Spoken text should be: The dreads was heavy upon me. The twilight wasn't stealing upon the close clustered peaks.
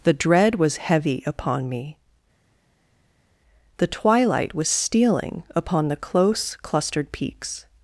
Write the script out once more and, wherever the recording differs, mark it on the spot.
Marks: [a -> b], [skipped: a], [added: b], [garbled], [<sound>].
The [dreads -> dread] was heavy upon me. The twilight [wasn't -> was] stealing upon the close clustered peaks.